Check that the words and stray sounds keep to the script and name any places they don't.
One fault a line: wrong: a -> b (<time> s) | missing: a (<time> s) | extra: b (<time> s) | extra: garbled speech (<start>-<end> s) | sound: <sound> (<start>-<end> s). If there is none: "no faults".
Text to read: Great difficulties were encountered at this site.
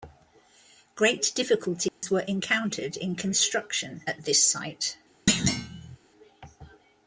sound: dropout (1.9-2.0 s)
extra: in construction (3.0 s)
sound: thud (5.3-6.0 s)